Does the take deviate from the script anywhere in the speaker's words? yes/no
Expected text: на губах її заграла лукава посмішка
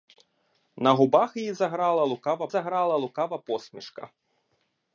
yes